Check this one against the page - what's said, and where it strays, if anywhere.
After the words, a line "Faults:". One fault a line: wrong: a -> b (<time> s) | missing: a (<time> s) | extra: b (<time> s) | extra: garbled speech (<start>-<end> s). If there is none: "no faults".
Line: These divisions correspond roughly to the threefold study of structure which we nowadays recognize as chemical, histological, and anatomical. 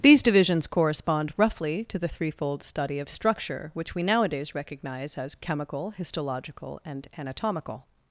These divisions correspond roughly to the threefold study of structure which we nowadays recognize as chemical, histological, and anatomical.
Faults:
no faults